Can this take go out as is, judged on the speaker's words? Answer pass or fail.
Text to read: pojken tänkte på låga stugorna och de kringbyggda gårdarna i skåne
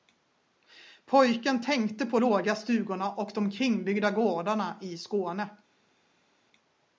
pass